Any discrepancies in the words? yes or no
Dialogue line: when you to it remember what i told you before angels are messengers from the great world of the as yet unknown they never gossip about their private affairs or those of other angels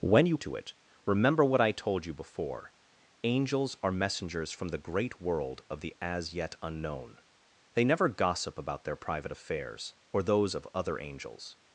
no